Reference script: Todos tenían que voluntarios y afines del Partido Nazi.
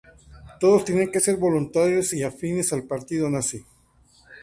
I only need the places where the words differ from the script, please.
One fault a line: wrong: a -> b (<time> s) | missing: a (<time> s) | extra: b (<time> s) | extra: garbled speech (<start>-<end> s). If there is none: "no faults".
extra: ser (1.2 s)
wrong: del -> al (2.7 s)